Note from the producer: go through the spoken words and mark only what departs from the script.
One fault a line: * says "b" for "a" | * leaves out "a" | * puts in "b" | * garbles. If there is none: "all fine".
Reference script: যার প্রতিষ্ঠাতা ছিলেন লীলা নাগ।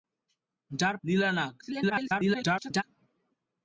* leaves out "প্রতিষ্ঠাতা ছিলেন"
* garbles